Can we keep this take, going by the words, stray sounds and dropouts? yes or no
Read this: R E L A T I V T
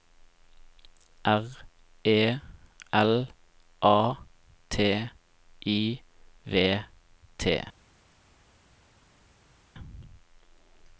yes